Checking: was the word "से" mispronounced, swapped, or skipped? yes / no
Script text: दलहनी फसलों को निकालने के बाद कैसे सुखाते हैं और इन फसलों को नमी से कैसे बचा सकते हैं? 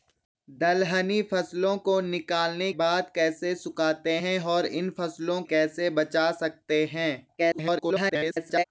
yes